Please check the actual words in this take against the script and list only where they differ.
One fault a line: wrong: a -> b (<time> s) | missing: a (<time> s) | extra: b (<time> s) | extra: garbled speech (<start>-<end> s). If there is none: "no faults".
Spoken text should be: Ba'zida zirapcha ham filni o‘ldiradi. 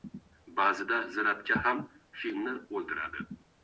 no faults